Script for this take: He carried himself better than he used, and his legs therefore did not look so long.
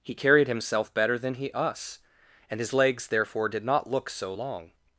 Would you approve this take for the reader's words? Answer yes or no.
no